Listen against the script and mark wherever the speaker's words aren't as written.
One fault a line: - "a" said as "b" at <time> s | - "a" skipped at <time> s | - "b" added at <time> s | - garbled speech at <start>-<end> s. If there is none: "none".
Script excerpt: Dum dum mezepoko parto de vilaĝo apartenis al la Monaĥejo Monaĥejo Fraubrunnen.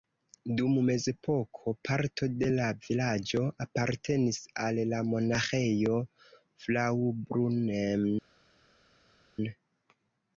- "dum" skipped at 0.8 s
- "la" added at 2.5 s
- "Monaĥejo" skipped at 6.0 s